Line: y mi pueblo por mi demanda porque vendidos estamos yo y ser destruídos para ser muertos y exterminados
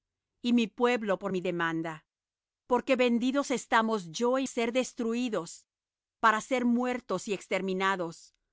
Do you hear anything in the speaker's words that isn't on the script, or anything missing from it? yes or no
no